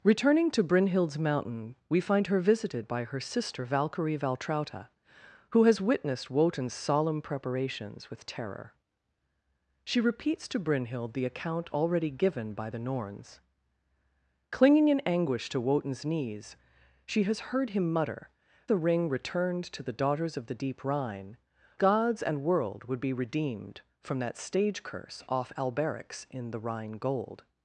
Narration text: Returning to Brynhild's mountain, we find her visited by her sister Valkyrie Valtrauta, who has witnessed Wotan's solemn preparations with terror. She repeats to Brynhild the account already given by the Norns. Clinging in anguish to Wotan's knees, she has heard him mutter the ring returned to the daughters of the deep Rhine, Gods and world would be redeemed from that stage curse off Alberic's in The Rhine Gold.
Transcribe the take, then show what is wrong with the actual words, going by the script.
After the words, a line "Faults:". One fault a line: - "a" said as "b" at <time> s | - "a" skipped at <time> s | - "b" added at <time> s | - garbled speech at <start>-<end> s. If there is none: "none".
Returning to Brynhild's mountain, we find her visited by her sister Valkyrie Valtrauta, who has witnessed Wotan's solemn preparations with terror. She repeats to Brynhild the account already given by the Norns. Clinging in anguish to Wotan's knees, she has heard him mutter the ring returned to the daughters of the deep Rhine, Gods and world would be redeemed from that stage curse off Alberic's in The Rhine Gold.
Faults:
none